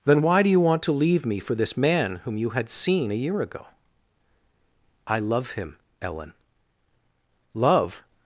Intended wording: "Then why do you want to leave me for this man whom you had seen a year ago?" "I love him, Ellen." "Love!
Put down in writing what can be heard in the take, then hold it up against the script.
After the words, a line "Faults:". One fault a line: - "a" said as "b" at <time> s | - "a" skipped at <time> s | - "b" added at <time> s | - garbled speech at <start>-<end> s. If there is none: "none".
"Then why do you want to leave me for this man whom you had seen a year ago?" "I love him, Ellen." "Love!
Faults:
none